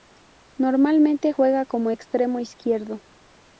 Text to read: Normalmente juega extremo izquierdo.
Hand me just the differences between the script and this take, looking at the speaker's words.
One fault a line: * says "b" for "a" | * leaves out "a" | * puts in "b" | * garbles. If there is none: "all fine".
* puts in "como"